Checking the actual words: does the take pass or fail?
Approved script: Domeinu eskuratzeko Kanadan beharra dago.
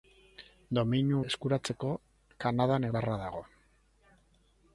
pass